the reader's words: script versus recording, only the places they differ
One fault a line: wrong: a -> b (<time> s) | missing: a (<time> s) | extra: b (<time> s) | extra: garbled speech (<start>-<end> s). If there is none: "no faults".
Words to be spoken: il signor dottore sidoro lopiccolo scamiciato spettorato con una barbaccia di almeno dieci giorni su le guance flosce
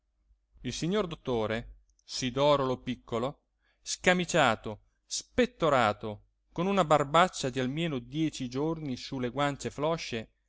no faults